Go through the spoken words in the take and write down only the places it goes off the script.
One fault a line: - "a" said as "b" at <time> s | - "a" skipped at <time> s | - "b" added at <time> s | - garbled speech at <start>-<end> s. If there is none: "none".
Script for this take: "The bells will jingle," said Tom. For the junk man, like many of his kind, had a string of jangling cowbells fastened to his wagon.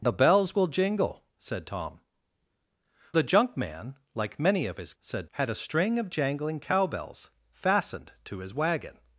- "For" skipped at 2.0 s
- "kind" said as "said" at 5.0 s